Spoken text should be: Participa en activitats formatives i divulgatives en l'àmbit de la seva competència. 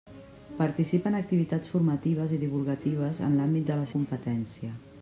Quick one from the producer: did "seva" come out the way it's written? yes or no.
no